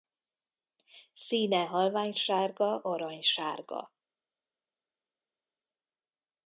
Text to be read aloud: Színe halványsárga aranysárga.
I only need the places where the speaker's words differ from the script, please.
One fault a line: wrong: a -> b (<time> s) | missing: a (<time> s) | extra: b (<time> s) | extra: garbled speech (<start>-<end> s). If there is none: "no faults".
no faults